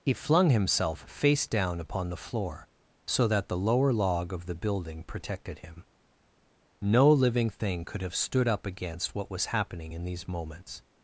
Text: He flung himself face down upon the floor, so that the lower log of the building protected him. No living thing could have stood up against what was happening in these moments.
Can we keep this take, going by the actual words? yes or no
yes